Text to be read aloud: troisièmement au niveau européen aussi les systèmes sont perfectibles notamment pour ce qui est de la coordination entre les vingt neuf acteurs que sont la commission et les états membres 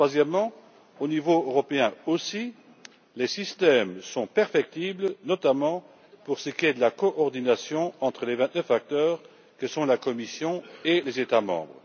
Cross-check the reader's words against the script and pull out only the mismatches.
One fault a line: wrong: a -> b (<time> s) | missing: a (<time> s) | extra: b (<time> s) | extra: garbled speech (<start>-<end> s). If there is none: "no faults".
no faults